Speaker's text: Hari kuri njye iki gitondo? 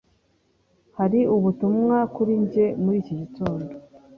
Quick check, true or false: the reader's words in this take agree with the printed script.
false